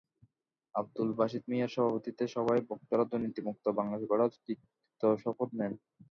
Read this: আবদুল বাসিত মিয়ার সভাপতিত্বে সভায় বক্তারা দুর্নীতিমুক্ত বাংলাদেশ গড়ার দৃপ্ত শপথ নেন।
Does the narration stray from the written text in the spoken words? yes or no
no